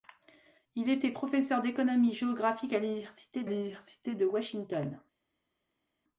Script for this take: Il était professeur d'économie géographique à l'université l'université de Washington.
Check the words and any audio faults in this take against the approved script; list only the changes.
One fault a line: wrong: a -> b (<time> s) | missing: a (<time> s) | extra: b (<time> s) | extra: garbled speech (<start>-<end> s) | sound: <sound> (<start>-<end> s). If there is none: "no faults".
no faults